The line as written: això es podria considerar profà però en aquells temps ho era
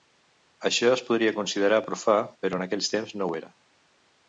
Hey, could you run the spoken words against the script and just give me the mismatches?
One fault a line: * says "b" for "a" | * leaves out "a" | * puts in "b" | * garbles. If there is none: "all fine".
* puts in "no"